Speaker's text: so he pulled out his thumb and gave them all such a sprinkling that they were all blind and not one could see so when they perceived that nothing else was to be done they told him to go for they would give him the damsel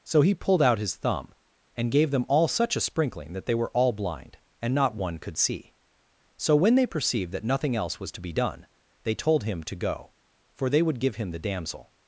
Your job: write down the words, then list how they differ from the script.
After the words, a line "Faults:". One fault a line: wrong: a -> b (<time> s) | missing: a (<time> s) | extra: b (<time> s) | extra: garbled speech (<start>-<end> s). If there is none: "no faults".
so he pulled out his thumb and gave them all such a sprinkling that they were all blind and not one could see so when they perceived that nothing else was to be done they told him to go for they would give him the damsel
Faults:
no faults